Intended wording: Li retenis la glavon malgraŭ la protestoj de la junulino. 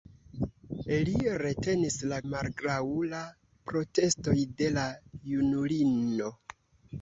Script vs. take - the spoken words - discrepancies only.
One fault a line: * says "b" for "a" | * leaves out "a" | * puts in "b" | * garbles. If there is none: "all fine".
* leaves out "glavon"